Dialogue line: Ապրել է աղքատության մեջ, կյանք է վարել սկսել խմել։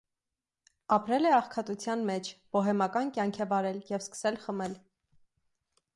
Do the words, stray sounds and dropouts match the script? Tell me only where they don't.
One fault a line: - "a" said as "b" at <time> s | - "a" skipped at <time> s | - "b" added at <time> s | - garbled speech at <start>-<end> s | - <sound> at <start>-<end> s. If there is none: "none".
- "բոհեմական" added at 2.6 s
- "և" added at 3.9 s